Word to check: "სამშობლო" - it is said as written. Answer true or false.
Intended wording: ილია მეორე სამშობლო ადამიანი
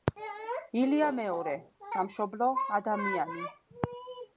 true